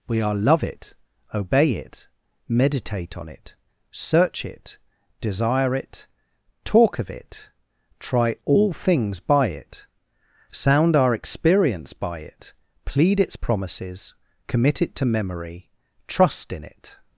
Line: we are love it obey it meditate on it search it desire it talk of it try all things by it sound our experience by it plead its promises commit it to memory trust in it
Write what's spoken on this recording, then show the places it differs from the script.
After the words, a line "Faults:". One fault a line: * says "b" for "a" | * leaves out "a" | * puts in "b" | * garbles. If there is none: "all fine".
we are love it obey it meditate on it search it desire it talk of it try all things by it sound our experience by it plead its promises commit it to memory trust in it
Faults:
all fine